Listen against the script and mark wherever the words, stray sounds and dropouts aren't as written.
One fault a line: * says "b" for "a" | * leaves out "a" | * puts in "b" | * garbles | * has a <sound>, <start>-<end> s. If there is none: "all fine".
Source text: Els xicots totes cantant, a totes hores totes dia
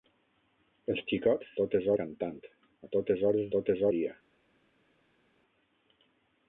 all fine